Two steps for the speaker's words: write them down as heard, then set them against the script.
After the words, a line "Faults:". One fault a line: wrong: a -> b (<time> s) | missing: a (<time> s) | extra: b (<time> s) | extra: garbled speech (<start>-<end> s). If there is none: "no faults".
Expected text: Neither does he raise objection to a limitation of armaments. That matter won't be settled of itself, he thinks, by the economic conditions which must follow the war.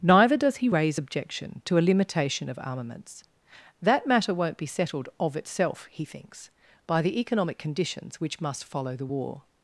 Neither does he raise objection to a limitation of armaments. That matter won't be settled of itself, he thinks, by the economic conditions which must follow the war.
Faults:
no faults